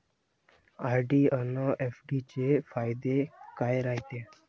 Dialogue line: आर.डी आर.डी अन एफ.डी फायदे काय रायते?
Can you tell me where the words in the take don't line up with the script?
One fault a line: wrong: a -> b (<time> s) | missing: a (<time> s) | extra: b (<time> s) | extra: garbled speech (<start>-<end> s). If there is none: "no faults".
missing: आर.डी (1.2 s)
extra: चे (2.3 s)